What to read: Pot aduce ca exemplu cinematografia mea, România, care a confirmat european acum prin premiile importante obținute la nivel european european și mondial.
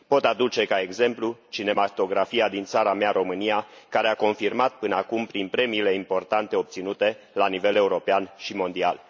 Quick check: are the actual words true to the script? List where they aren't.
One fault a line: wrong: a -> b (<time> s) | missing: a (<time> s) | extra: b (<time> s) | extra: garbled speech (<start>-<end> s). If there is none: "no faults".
extra: din țara (2.5 s)
wrong: european -> până (4.7 s)
missing: european (8.3 s)